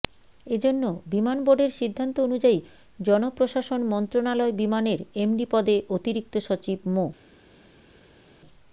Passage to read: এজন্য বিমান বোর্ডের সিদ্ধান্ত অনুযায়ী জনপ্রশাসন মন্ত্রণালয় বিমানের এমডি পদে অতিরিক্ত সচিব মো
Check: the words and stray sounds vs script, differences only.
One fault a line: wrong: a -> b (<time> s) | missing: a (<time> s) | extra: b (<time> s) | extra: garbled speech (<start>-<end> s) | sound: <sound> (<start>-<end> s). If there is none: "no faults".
no faults